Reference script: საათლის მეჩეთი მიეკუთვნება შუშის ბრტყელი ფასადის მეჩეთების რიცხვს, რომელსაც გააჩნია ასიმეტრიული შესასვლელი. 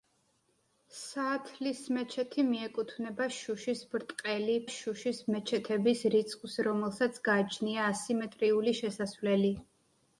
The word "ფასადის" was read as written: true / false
false